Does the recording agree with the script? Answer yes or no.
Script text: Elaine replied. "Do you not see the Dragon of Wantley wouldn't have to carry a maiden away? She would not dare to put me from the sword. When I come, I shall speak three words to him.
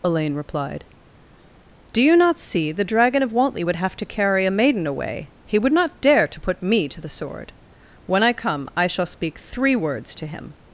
no